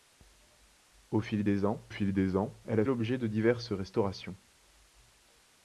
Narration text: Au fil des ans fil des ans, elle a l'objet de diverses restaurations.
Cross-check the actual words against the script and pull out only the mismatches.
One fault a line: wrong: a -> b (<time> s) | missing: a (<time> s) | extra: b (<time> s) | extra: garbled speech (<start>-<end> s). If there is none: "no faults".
no faults